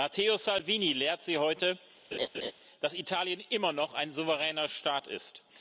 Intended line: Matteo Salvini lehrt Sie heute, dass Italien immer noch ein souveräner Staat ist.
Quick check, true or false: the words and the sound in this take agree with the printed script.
false